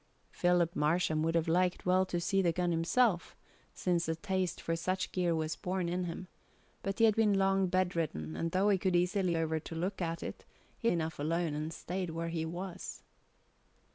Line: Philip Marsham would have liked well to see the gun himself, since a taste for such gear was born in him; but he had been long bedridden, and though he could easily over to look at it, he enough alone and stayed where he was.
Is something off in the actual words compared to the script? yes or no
no